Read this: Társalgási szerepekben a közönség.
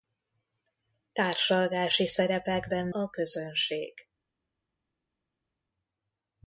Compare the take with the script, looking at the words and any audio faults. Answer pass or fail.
pass